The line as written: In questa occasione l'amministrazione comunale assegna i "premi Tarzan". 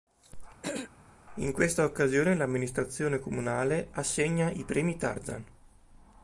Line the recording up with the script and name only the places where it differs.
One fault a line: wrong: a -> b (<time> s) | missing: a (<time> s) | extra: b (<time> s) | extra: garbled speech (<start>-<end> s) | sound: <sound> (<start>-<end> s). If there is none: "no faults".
sound: throat clearing (0.6-0.9 s)